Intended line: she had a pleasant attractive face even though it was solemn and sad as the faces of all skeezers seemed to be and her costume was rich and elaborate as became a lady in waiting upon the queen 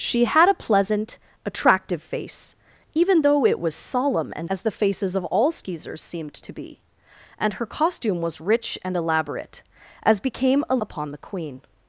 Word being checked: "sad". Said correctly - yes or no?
no